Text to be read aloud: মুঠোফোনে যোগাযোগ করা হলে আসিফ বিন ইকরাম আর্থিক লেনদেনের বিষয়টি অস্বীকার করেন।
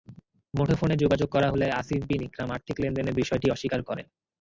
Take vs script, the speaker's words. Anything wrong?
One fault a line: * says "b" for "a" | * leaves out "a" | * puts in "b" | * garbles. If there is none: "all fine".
all fine